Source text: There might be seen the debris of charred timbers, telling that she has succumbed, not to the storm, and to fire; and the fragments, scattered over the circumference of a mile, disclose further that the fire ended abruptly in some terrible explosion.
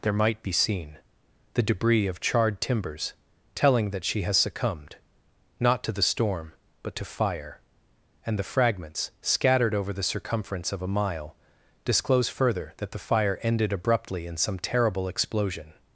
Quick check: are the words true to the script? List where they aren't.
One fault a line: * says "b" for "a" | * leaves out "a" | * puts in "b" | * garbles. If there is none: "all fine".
* says "but" for "and"